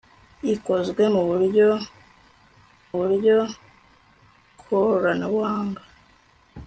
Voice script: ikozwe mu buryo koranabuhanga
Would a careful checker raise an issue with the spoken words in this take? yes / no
yes